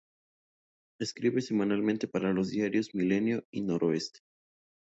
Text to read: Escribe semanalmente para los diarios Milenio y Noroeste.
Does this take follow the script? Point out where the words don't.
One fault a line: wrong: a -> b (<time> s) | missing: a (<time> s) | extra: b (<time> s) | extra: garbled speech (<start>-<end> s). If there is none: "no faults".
no faults